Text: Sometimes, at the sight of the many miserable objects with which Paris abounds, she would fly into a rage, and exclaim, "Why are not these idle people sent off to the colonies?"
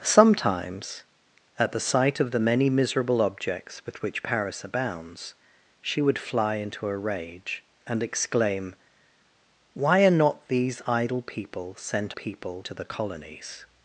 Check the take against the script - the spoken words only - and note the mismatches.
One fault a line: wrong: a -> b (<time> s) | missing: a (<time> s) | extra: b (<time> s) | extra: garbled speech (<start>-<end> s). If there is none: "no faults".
wrong: off -> people (12.1 s)